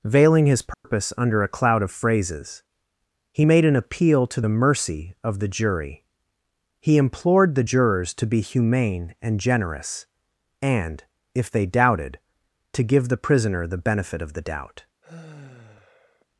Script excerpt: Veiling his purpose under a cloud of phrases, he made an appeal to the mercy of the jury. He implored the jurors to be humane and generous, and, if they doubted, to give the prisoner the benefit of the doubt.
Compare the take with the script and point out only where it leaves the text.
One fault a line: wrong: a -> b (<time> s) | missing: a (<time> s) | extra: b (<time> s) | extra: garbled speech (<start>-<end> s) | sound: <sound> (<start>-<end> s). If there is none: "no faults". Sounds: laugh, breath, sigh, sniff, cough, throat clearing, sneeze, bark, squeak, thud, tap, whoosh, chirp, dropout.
sound: dropout (0.7-0.8 s)
sound: sigh (15.0-16.3 s)